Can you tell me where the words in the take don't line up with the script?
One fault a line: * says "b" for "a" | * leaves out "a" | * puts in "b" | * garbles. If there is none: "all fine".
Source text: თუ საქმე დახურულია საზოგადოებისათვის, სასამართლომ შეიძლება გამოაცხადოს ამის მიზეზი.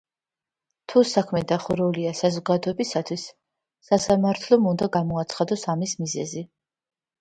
* says "უნდა" for "შეიძლება"